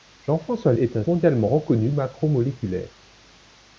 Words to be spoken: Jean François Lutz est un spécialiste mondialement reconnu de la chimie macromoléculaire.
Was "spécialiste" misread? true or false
true